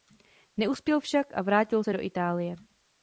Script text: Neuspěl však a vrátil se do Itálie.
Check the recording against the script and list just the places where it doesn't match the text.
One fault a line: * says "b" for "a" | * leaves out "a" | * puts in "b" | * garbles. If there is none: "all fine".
all fine